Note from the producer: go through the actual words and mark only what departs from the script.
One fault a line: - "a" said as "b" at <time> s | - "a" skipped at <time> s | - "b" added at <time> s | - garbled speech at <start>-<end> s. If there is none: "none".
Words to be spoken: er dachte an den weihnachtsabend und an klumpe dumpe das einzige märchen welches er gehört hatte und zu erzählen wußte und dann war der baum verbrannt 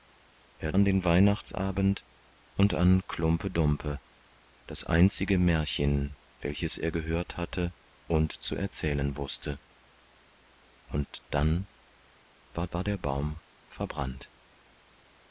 - "dachte" skipped at 0.7 s
- "war" added at 12.7 s